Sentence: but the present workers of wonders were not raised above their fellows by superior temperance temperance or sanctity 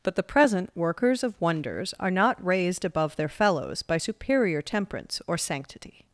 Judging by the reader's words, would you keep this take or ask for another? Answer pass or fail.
fail